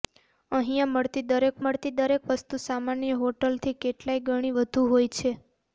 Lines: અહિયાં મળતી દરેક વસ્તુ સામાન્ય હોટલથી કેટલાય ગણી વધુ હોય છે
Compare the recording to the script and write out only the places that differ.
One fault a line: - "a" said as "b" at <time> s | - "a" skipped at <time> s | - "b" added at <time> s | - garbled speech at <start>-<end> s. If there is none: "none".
- "મળતી દરેક" added at 1.6 s